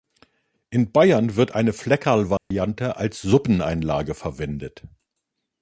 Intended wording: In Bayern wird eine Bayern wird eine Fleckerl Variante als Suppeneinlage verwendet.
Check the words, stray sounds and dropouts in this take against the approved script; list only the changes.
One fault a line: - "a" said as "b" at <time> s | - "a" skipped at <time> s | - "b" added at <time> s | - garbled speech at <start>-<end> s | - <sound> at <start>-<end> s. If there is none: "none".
- "Bayern wird eine" skipped at 1.7 s
- dropout at 2.4-2.5 s